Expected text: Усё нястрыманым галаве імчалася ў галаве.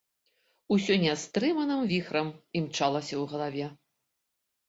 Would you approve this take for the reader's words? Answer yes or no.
no